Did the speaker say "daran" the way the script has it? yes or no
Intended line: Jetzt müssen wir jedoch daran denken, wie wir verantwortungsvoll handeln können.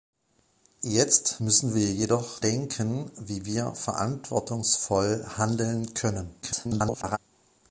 no